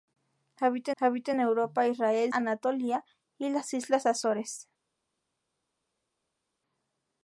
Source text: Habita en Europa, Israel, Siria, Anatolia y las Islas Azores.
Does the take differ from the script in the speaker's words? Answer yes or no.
yes